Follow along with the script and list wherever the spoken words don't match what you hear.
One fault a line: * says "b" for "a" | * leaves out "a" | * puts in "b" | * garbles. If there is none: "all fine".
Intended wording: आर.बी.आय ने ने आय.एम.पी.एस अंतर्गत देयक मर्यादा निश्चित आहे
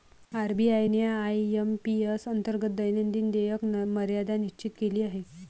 * leaves out "ने"
* puts in "दैनंदिन"
* puts in "केली"